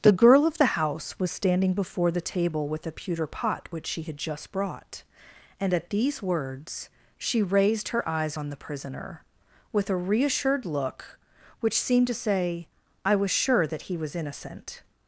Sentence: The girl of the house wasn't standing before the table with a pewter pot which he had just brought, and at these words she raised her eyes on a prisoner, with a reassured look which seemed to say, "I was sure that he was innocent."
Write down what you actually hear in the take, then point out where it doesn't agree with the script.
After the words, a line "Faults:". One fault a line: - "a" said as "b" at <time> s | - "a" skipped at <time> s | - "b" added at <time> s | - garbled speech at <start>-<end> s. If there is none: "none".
The girl of the house was standing before the table with a pewter pot which she had just brought, and at these words she raised her eyes on the prisoner, with a reassured look which seemed to say, "I was sure that he was innocent."
Faults:
- "wasn't" said as "was" at 1.2 s
- "he" said as "she" at 3.9 s
- "a" said as "the" at 8.5 s